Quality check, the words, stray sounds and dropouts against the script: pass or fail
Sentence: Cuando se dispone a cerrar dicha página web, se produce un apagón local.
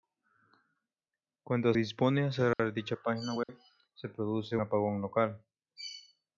fail